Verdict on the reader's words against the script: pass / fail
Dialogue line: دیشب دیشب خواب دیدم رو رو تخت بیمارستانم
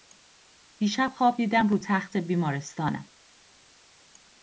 fail